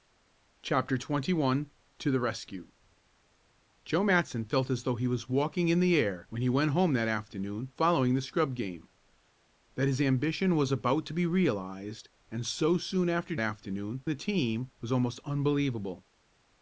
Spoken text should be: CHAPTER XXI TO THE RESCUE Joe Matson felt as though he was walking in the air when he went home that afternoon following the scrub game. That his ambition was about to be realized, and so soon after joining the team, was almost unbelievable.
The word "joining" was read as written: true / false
false